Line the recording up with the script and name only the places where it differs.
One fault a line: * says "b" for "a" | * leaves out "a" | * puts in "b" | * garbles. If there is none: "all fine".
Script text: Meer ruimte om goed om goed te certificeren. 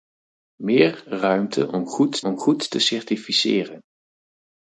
all fine